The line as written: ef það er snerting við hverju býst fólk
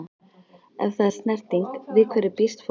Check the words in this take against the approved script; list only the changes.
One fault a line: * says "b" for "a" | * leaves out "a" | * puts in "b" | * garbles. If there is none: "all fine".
all fine